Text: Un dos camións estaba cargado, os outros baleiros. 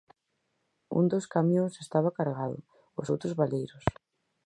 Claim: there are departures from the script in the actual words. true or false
false